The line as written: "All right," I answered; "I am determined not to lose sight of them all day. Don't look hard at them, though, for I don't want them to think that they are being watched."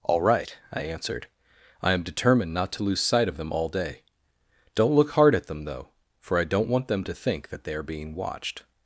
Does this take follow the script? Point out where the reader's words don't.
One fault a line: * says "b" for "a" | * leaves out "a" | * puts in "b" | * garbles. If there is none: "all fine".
all fine